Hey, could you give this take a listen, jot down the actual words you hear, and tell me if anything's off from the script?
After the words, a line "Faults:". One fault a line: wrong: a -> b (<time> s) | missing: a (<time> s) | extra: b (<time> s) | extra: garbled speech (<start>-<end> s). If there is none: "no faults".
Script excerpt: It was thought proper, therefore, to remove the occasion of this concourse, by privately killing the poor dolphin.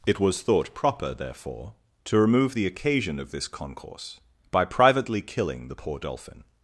It was thought proper, therefore, to remove the occasion of this concourse, by privately killing the poor dolphin.
Faults:
no faults